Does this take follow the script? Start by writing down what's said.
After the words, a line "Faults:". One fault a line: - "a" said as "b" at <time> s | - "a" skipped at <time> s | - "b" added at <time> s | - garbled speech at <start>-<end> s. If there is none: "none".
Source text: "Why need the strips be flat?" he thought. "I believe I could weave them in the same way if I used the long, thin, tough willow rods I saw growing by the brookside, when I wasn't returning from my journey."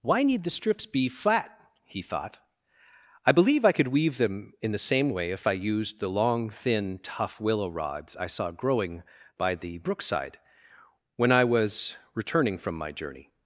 "Why need the strips be flat?" he thought. "I believe I could weave them in the same way if I used the long, thin, tough willow rods I saw growing by the brookside, when I was returning from my journey."
Faults:
- "wasn't" said as "was" at 11.4 s